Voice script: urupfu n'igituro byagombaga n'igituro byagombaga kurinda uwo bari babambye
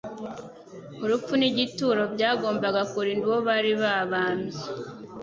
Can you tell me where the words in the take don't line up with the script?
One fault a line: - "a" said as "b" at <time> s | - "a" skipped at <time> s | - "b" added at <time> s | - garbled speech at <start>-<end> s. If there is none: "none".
- "n'igituro byagombaga" skipped at 2.8 s